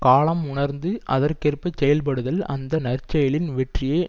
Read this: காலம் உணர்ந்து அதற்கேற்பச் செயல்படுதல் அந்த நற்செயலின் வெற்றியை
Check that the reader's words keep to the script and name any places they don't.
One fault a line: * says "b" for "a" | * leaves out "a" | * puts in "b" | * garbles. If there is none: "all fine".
all fine